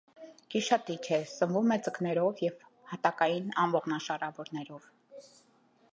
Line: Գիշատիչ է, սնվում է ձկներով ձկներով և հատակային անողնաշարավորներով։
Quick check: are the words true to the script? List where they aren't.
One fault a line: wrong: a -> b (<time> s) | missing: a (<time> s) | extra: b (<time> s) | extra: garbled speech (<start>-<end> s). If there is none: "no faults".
missing: ձկներով (2.4 s)